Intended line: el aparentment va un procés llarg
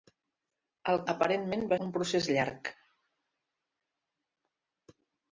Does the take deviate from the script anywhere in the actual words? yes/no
no